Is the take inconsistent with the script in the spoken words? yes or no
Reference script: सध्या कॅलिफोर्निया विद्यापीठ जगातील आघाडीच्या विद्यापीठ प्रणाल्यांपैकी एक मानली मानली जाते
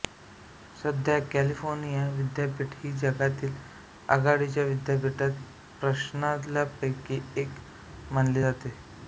yes